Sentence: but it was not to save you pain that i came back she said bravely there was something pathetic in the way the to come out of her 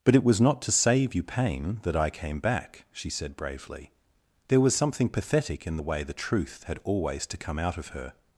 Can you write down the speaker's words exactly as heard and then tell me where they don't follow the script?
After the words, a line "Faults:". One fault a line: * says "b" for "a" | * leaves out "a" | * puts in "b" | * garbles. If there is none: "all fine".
but it was not to save you pain that i came back she said bravely there was something pathetic in the way the truth had always to come out of her
Faults:
* puts in "truth had always"